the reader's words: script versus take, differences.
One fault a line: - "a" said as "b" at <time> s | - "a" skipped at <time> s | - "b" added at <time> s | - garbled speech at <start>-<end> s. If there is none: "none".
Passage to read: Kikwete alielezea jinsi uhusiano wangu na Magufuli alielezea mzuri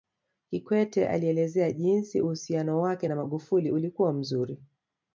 - "wangu" said as "wake" at 2.8 s
- "alielezea" said as "ulikuwa" at 3.7 s